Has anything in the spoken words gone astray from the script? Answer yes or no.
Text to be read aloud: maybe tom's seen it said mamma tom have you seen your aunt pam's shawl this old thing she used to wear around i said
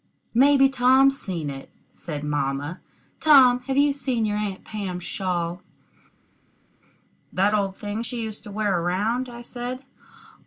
yes